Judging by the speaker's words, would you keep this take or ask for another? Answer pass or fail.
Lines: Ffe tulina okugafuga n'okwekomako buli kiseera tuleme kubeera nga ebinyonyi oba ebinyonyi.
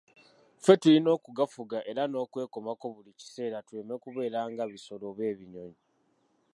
fail